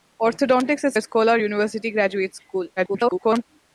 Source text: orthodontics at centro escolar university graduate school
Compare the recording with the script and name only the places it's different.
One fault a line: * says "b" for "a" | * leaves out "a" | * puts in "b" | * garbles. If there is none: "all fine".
* leaves out "centro"
* garbles